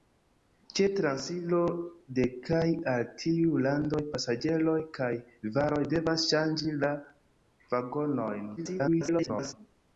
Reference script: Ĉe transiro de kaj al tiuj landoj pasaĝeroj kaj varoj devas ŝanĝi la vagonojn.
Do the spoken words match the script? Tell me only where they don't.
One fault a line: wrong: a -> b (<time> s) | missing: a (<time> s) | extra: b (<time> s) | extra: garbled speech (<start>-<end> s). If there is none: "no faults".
extra: garbled speech (8.6-9.5 s)